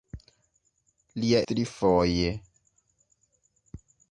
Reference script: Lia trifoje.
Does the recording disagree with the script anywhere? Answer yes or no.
no